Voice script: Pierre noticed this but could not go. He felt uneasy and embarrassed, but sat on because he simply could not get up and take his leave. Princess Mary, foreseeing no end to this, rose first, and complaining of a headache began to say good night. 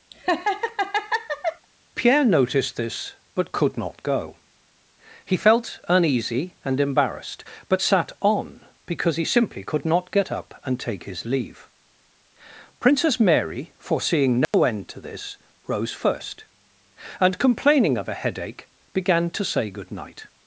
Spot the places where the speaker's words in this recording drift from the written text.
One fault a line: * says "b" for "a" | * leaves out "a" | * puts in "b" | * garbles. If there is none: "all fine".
all fine